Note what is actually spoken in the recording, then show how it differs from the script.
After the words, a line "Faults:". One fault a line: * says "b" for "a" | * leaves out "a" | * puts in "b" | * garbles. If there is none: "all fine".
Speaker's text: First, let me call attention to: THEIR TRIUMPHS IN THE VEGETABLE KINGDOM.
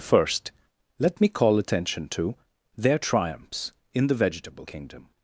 First, let me call attention to: THEIR TRIUMPHS IN THE VEGETABLE KINGDOM.
Faults:
all fine